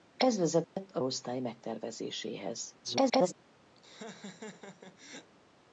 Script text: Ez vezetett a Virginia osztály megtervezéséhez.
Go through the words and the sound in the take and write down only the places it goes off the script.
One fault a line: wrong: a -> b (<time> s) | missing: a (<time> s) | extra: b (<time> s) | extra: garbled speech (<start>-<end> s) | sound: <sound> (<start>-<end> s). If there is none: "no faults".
sound: dropout (0.6-0.8 s)
missing: Virginia (1.0 s)
extra: garbled speech (2.8-3.3 s)
sound: laugh (3.8-5.3 s)